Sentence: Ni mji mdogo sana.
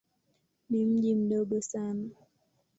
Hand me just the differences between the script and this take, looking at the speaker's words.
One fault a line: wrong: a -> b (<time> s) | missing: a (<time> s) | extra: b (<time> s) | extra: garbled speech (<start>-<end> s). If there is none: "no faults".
no faults